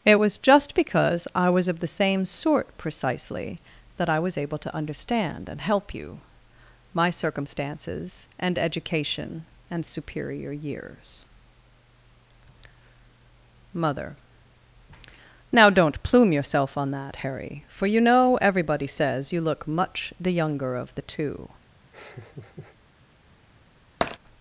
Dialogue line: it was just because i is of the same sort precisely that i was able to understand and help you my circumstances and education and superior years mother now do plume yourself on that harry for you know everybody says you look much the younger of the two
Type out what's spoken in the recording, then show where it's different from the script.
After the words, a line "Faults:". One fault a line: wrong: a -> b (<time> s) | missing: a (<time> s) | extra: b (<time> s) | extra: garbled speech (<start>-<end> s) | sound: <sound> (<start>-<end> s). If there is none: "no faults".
it was just because i was of the same sort precisely that i was able to understand and help you my circumstances and education and superior years mother now don't plume yourself on that harry for you know everybody says you look much the younger of the two
Faults:
wrong: is -> was (1.5 s)
wrong: do -> don't (15.7 s)
sound: laugh (21.9-22.8 s)
sound: tap (24.0-24.2 s)